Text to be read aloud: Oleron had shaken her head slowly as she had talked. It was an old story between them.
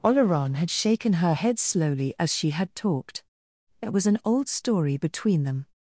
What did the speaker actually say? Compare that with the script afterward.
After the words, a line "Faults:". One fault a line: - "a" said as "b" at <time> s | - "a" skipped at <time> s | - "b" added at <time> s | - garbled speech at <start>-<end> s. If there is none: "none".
Oleron had shaken her head slowly as she had talked. It was an old story between them.
Faults:
none